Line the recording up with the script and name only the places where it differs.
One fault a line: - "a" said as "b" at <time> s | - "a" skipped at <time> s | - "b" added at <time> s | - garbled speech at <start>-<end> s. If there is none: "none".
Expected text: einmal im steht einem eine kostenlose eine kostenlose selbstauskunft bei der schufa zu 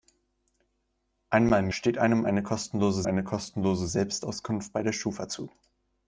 none